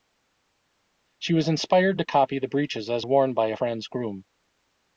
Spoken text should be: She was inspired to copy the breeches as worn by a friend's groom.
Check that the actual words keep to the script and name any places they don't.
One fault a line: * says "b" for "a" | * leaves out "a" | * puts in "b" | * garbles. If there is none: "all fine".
all fine